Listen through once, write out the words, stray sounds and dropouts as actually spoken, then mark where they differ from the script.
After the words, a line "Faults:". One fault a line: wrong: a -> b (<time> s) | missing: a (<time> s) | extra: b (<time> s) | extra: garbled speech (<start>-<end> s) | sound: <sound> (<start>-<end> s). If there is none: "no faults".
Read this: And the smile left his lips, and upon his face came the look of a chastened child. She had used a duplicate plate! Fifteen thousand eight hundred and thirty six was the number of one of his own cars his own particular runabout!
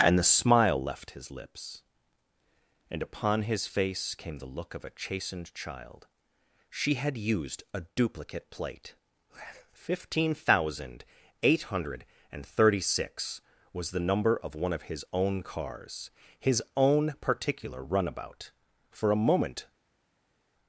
And the smile left his lips, and upon his face came the look of a chastened child. She had used a duplicate plate! Fifteen thousand eight hundred and thirty six was the number of one of his own cars his own particular runabout! For a moment
Faults:
extra: For a moment (18.9 s)